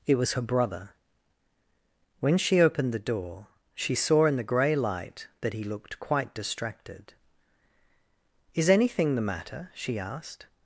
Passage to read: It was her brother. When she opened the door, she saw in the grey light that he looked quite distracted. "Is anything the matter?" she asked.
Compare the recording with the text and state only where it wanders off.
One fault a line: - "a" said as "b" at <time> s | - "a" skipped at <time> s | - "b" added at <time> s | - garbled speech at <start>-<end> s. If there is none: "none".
none